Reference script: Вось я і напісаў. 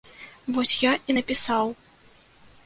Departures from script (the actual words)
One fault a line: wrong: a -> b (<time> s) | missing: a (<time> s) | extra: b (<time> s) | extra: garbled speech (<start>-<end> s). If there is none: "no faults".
no faults